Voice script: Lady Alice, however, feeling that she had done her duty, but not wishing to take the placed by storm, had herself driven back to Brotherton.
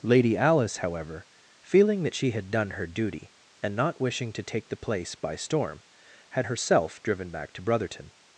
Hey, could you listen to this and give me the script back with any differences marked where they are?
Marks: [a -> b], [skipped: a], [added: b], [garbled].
Lady Alice, however, feeling that she had done her duty, [but -> and] not wishing to take the [placed -> place] by storm, had herself driven back to Brotherton.